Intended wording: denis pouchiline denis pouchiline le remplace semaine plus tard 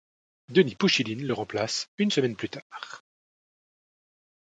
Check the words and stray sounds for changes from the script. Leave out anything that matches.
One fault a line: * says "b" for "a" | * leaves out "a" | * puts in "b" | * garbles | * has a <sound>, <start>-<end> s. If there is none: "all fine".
* leaves out "denis pouchiline"
* puts in "une"